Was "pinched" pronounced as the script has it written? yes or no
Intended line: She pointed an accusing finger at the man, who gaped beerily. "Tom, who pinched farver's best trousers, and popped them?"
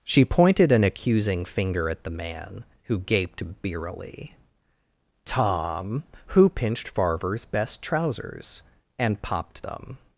yes